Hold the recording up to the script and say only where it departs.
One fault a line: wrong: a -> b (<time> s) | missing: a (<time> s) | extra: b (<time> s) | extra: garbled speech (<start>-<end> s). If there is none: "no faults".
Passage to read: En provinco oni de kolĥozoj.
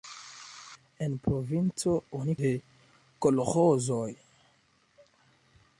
no faults